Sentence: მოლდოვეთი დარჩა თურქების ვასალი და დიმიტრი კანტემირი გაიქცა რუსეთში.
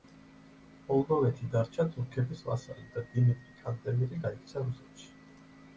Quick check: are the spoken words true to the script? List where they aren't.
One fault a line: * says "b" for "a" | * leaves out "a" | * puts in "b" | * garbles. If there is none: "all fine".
all fine